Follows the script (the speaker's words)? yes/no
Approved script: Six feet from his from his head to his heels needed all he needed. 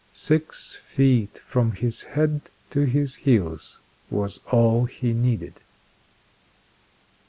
no